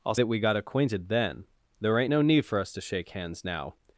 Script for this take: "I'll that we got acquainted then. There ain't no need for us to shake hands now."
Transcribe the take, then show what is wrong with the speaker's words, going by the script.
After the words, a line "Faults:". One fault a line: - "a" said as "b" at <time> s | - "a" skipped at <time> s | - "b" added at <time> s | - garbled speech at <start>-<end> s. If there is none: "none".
"I'll that we got acquainted then. There ain't no need for us to shake hands now."
Faults:
none